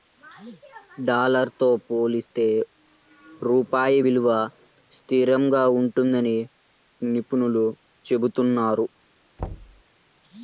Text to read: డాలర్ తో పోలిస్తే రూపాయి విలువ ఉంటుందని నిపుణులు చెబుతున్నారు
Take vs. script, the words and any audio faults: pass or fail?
fail